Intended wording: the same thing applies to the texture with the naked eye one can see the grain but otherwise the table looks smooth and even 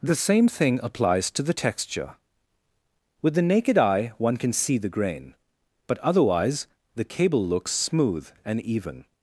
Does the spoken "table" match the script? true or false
false